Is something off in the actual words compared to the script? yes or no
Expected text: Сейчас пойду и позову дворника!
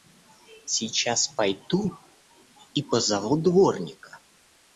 no